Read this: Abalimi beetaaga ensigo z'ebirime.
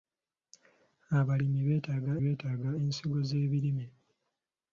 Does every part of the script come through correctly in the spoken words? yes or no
no